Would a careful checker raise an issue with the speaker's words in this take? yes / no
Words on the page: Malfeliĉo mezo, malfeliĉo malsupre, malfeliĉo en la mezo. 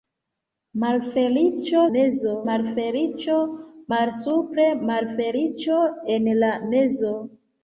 no